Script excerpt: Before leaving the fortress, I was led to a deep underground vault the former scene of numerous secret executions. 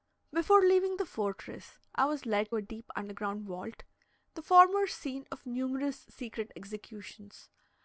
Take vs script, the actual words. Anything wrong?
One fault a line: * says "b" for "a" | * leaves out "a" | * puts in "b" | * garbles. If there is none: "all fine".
* leaves out "to"